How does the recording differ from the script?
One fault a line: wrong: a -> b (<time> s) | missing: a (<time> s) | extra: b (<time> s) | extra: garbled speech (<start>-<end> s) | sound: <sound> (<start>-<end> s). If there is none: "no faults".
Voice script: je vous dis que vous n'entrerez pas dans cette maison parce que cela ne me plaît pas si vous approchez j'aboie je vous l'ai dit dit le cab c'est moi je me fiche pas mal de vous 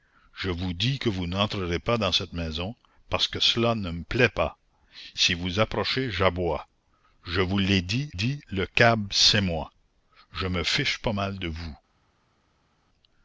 no faults